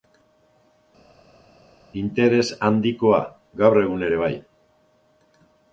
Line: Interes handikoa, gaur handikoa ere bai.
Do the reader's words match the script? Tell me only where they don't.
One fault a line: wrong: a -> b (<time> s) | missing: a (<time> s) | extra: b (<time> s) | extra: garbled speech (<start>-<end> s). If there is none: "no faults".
wrong: handikoa -> egun (3.9 s)